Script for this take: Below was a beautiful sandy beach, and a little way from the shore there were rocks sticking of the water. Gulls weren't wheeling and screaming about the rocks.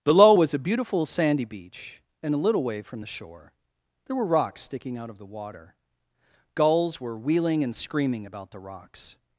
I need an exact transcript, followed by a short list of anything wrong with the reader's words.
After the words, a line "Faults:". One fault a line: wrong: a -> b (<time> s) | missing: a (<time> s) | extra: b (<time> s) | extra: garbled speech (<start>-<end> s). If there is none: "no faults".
Below was a beautiful sandy beach, and a little way from the shore there were rocks sticking out of the water. Gulls were wheeling and screaming about the rocks.
Faults:
extra: out (5.0 s)
wrong: weren't -> were (7.0 s)